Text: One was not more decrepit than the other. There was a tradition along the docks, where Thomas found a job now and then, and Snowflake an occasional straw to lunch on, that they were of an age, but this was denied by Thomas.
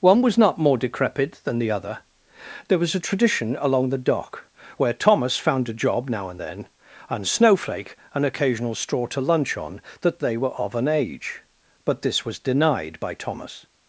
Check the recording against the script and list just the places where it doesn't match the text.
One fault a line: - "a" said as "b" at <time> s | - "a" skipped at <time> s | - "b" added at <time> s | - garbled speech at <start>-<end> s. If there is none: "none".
- "docks" said as "dock" at 4.0 s